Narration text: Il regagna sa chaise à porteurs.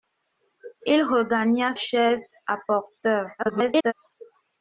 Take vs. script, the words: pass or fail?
fail